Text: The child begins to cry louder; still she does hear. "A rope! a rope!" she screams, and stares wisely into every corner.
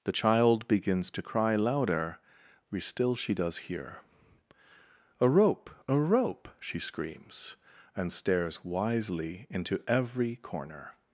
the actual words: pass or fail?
pass